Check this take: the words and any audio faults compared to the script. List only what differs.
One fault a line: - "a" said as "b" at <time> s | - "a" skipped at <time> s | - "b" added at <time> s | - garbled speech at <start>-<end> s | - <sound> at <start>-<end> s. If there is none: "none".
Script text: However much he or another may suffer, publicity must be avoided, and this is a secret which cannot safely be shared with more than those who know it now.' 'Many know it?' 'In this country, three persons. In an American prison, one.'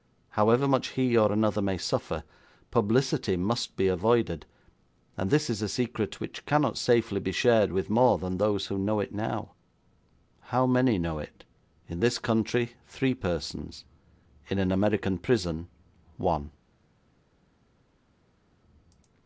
- "How" added at 10.4 s